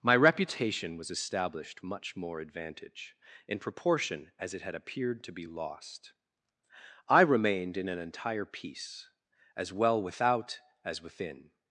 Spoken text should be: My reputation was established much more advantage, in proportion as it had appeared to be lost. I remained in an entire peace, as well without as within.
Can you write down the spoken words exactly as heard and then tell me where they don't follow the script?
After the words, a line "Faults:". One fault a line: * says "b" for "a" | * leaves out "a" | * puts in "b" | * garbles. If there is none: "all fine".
My reputation was established much more advantage, in proportion as it had appeared to be lost. I remained in an entire peace, as well without as within.
Faults:
all fine